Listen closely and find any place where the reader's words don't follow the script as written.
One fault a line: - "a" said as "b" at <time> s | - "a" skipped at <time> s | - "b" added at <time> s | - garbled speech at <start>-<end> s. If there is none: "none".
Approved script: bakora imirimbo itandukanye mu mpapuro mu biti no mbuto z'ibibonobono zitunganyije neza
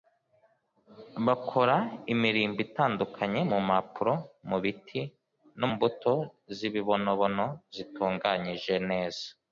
none